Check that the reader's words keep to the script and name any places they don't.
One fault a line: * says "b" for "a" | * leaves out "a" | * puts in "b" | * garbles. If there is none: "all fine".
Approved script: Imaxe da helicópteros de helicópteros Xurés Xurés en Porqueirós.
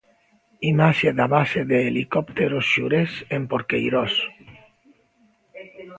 * says "base" for "helicópteros"
* leaves out "Xurés"